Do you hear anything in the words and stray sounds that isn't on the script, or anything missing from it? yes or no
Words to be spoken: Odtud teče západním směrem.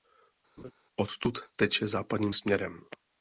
yes